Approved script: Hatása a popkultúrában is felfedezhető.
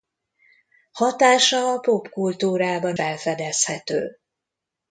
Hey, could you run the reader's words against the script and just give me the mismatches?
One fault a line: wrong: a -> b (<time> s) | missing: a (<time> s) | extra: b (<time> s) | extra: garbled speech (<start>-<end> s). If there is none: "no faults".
missing: is (3.0 s)